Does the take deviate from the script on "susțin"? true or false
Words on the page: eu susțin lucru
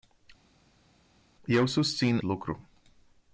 false